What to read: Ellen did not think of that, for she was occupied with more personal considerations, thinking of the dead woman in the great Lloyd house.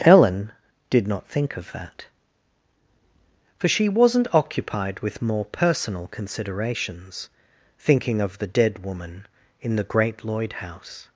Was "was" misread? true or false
true